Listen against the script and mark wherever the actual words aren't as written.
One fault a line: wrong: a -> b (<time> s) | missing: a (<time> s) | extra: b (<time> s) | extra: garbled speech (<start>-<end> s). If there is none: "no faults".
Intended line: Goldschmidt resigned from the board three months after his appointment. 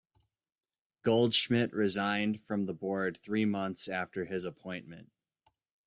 no faults